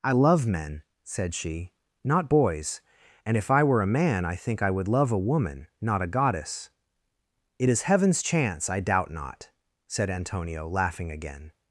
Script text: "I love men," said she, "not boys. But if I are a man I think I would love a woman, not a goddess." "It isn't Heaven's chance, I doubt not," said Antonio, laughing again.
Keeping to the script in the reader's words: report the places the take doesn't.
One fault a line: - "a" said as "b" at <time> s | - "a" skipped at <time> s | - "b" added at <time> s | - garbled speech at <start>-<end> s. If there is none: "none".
- "But" said as "And" at 3.3 s
- "are" said as "were" at 3.6 s
- "isn't" said as "is" at 7.7 s